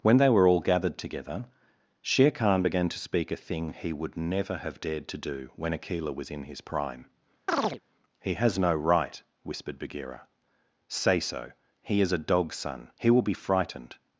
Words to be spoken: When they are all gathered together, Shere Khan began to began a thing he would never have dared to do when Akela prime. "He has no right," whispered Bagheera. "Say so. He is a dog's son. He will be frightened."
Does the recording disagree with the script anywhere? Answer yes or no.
yes